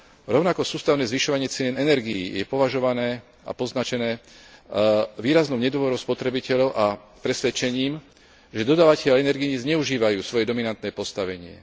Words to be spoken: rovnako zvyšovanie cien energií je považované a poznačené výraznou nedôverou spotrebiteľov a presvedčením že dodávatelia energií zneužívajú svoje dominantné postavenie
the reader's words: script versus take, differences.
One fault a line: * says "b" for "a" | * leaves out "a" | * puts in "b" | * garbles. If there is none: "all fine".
* puts in "sústavné"